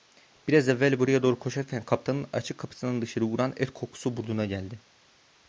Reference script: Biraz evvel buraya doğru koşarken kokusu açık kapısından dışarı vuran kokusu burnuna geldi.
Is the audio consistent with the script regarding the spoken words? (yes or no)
no